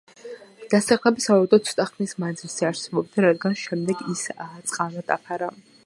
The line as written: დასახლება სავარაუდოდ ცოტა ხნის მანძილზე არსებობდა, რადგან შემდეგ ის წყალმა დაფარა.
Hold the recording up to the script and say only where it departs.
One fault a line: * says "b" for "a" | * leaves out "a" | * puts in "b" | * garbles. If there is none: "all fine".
all fine